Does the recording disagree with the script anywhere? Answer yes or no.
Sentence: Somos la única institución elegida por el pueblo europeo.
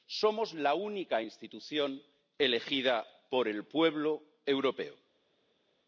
no